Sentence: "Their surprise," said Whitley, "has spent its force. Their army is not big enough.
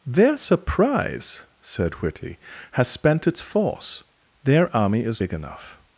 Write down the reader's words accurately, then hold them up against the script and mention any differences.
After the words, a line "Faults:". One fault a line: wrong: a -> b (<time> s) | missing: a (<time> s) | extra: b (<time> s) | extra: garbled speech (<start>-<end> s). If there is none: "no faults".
"Their surprise," said Whitley, "has spent its force. Their army is big enough.
Faults:
missing: not (5.2 s)